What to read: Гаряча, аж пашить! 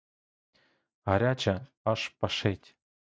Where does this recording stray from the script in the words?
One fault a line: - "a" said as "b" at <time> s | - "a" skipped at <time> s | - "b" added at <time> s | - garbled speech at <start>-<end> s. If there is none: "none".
none